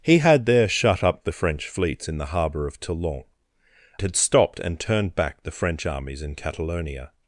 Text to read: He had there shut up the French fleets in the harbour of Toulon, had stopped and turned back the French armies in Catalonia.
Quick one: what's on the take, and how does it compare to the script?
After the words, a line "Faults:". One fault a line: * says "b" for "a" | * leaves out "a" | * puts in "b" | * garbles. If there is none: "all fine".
He had there shut up the French fleets in the harbour of Toulon, had stopped and turned back the French armies in Catalonia.
Faults:
all fine